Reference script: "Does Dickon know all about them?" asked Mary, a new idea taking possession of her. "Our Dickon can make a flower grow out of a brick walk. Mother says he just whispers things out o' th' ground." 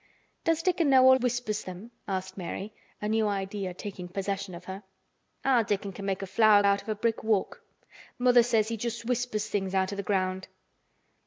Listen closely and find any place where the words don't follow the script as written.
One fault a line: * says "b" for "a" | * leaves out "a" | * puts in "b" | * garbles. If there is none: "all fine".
* says "whispers" for "about"
* leaves out "grow"